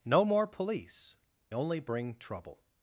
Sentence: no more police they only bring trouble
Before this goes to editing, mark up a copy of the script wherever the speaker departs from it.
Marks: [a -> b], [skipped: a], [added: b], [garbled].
no more police [skipped: they] only bring trouble